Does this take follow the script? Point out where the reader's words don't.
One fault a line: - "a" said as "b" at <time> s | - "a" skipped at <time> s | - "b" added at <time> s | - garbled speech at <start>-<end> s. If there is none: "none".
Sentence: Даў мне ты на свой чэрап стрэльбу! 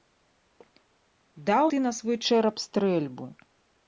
- "мне" skipped at 1.6 s